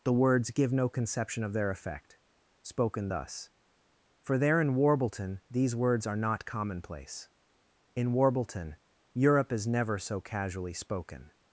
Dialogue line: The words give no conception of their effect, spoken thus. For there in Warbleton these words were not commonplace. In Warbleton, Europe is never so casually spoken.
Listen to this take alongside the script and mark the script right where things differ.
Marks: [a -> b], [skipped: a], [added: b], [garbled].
The words give no conception of their effect, spoken thus. For there in Warbleton these words [were -> are] not commonplace. In Warbleton, Europe is never so casually spoken.